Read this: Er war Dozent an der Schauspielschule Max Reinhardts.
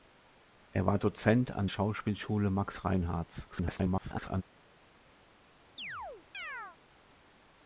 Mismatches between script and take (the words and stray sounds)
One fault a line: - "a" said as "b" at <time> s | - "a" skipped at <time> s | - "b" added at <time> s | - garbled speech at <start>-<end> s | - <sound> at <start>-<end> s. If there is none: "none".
- "der" skipped at 1.7 s
- garbled speech at 3.5-4.4 s
- chirp at 5.8-6.8 s